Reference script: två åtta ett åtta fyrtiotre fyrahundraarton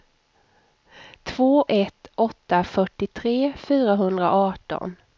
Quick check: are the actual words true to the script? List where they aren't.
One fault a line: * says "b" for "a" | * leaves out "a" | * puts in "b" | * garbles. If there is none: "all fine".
* leaves out "åtta"